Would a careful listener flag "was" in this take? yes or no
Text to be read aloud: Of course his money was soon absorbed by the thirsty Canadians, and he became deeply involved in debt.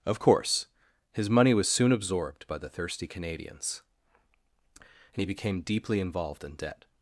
no